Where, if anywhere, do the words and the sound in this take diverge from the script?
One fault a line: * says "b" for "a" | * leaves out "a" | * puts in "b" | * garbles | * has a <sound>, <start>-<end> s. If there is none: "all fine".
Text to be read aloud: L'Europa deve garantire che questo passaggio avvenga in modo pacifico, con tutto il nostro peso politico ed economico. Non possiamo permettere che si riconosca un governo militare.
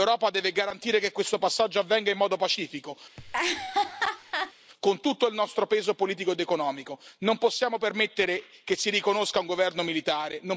* has a laugh, 3.2-4.5 s